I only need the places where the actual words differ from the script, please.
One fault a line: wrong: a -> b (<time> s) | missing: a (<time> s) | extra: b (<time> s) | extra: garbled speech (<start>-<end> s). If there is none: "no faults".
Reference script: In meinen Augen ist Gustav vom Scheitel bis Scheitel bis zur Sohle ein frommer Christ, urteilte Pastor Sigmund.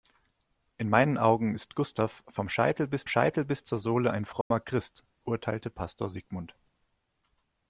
no faults